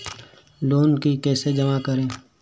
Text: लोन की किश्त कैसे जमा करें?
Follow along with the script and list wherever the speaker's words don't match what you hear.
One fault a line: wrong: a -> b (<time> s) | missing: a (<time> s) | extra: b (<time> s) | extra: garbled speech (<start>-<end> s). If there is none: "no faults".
missing: किश्त (1.1 s)